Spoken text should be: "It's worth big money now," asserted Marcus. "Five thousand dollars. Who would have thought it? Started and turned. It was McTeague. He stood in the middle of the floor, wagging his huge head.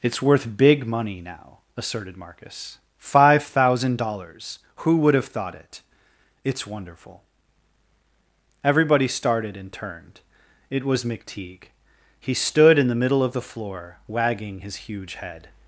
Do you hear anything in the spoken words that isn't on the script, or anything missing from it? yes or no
yes